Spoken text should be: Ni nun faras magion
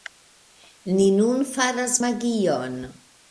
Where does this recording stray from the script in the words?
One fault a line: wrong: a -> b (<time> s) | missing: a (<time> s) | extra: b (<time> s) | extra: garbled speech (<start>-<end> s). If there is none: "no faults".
no faults